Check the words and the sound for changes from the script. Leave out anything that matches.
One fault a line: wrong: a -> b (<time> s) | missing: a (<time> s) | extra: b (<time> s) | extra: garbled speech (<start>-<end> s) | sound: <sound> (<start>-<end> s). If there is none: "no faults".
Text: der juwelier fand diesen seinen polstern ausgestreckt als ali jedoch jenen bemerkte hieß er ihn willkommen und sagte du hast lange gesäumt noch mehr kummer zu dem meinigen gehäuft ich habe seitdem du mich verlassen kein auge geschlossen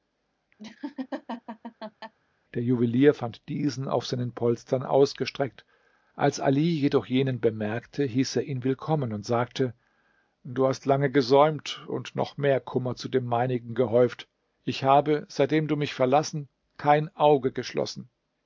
sound: laugh (0.6-2.1 s)
extra: auf (3.9 s)
extra: und (11.9 s)